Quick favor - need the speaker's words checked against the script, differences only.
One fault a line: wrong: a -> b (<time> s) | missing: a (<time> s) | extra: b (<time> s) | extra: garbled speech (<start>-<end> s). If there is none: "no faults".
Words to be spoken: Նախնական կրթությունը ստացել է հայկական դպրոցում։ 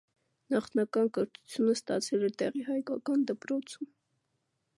extra: տեղի (2.4 s)